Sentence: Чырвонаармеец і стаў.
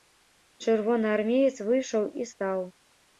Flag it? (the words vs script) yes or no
yes